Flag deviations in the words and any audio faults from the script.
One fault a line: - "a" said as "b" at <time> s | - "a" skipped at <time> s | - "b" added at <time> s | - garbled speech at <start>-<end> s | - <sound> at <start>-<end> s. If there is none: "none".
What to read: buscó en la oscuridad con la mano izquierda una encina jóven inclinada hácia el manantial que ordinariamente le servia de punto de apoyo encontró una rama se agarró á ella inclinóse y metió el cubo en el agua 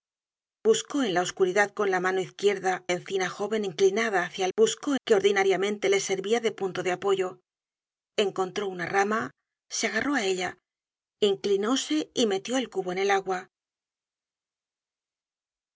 - "una" skipped at 2.8 s
- "manantial" said as "buscó" at 4.6 s